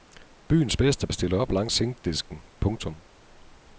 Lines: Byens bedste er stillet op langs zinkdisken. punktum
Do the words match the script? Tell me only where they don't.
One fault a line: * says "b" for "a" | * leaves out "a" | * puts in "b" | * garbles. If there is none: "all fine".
all fine